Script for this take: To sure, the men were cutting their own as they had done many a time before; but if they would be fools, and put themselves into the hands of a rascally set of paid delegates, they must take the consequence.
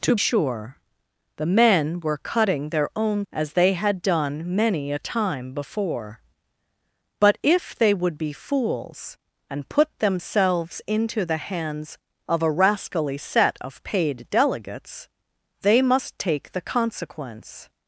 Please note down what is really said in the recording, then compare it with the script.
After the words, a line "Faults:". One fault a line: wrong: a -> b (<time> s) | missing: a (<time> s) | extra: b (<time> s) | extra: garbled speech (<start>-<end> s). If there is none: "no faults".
To sure, the men were cutting their own as they had done many a time before; but if they would be fools, and put themselves into the hands of a rascally set of paid delegates, they must take the consequence.
Faults:
no faults